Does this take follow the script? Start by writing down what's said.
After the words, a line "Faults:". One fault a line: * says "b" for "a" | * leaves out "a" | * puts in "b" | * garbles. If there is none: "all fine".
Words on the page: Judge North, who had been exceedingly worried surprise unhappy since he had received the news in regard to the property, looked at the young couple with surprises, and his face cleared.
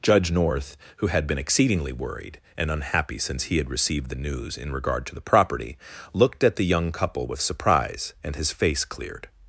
Judge North, who had been exceedingly worried and unhappy since he had received the news in regard to the property, looked at the young couple with surprise, and his face cleared.
Faults:
* says "and" for "surprise"
* says "surprise" for "surprises"